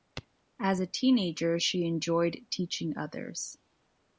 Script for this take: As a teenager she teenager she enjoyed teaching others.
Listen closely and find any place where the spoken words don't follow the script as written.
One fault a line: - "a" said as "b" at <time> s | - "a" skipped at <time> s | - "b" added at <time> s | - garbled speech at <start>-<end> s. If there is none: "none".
- "teenager she" skipped at 1.8 s